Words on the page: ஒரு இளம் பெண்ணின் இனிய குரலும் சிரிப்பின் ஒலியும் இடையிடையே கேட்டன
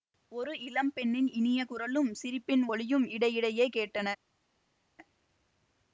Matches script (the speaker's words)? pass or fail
pass